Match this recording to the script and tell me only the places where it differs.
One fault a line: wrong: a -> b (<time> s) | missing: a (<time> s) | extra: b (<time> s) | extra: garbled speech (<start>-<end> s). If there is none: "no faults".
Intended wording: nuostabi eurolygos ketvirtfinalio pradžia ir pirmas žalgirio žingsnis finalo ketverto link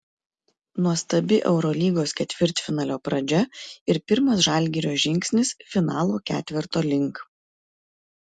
no faults